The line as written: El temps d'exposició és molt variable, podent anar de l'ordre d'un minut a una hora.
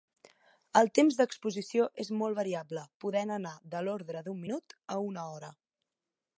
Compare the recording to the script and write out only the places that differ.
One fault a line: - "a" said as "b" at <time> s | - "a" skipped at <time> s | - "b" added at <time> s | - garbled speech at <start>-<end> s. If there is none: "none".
none